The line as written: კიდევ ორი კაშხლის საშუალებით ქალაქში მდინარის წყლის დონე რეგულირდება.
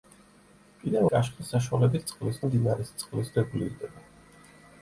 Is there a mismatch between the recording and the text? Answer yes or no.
yes